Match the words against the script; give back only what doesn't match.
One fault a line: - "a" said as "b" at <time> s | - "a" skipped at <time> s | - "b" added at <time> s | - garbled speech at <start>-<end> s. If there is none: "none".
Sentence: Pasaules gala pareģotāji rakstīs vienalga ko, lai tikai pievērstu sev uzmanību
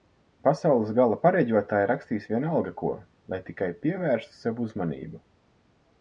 none